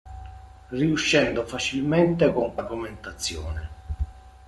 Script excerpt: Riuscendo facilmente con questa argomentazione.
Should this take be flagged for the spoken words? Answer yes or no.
yes